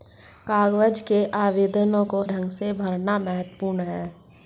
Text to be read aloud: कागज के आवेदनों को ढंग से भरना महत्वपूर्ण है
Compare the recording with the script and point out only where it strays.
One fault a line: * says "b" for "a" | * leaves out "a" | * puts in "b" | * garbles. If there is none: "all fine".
all fine